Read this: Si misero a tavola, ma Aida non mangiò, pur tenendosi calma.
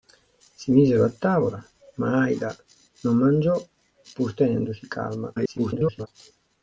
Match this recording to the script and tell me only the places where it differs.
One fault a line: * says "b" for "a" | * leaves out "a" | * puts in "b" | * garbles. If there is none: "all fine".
* garbles